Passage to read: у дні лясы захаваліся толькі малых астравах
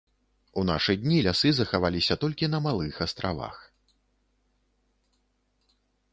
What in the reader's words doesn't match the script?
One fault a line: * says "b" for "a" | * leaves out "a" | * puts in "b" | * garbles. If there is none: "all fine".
* puts in "нашы"
* puts in "на"